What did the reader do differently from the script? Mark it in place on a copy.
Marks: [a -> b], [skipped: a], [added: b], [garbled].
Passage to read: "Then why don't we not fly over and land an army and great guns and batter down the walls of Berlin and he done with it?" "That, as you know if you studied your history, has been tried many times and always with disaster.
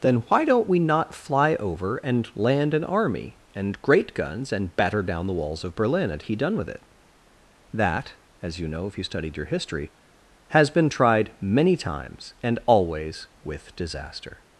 "Then why don't we not fly over and land an army and great guns and batter down the walls of Berlin and he done with it?" "That, as you know if you studied your history, has been tried many times and always with disaster.